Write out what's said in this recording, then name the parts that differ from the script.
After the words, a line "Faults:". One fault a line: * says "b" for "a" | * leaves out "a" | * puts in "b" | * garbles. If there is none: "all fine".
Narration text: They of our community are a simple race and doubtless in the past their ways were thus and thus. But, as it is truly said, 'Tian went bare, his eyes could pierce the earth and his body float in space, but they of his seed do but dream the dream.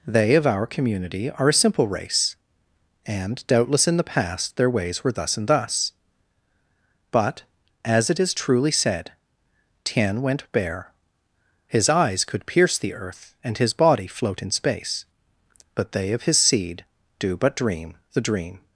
They of our community are a simple race and doubtless in the past their ways were thus and thus. But, as it is truly said, 'Tian went bare, his eyes could pierce the earth and his body float in space, but they of his seed do but dream the dream.
Faults:
all fine